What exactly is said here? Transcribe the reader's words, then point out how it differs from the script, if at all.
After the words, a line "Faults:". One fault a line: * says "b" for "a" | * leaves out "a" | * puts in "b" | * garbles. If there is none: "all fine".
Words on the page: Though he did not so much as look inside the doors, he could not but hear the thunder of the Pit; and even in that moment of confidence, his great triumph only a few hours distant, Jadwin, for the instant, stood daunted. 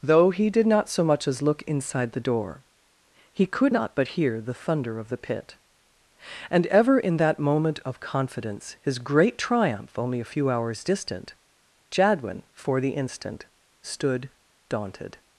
Though he did not so much as look inside the door, he could not but hear the thunder of the Pit; and ever in that moment of confidence, his great triumph only a few hours distant, Jadwin, for the instant, stood daunted.
Faults:
* says "door" for "doors"
* says "ever" for "even"